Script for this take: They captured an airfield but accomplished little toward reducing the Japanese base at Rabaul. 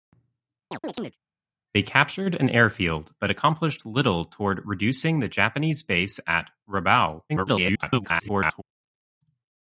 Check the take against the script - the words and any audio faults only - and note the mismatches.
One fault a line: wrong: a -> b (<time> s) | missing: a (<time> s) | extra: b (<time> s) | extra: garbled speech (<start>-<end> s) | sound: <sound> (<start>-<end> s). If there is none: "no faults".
sound: chirp (0.7-1.2 s)
extra: garbled speech (7.3-8.6 s)